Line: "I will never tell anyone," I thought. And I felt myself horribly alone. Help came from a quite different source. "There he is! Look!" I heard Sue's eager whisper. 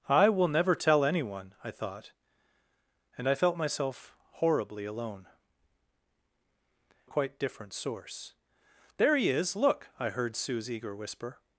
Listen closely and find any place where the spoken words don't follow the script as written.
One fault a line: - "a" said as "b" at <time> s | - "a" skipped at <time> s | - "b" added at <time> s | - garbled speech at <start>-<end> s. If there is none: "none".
- "Help came from" skipped at 5.3 s